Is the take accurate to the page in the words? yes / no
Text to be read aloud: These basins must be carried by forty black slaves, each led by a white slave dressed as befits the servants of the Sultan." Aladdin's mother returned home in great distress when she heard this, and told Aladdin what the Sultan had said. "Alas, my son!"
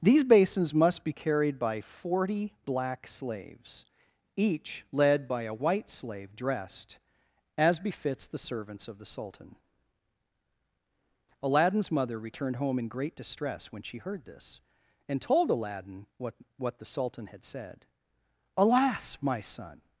no